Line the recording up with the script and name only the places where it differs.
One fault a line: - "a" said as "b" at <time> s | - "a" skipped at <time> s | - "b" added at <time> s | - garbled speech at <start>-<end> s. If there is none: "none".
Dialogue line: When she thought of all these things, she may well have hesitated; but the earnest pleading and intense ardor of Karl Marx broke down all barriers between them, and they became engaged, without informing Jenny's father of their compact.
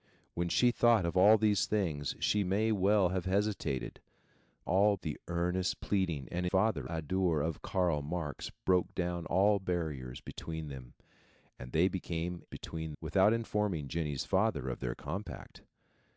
- "but" said as "all" at 4.6 s
- "intense" said as "father" at 6.5 s
- "engaged" said as "between" at 12.4 s